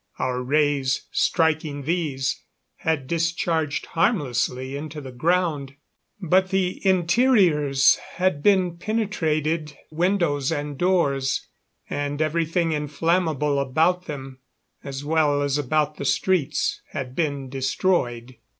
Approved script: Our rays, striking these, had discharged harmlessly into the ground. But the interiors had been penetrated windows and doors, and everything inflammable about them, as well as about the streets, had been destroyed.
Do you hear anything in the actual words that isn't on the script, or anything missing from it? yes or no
no